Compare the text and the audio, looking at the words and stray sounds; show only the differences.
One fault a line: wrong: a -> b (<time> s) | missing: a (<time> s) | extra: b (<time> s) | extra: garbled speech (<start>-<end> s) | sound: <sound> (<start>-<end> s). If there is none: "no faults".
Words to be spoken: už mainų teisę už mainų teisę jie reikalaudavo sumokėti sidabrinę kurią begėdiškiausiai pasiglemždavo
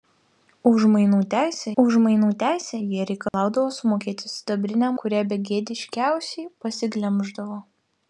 sound: dropout (3.3-3.3 s)